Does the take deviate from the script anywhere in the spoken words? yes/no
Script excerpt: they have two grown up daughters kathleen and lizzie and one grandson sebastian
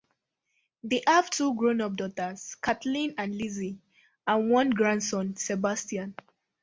no